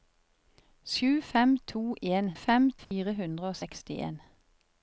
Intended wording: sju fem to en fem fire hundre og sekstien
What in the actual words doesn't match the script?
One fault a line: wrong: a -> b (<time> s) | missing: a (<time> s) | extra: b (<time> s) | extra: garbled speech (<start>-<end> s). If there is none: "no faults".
no faults